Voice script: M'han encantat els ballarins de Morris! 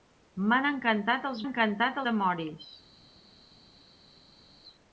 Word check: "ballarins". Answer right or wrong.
wrong